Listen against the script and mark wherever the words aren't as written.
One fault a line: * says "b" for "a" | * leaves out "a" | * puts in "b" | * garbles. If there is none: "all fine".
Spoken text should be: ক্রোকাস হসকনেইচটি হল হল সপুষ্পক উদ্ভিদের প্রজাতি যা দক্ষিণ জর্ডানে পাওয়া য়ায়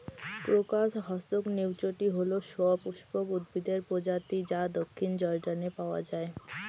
* leaves out "হল"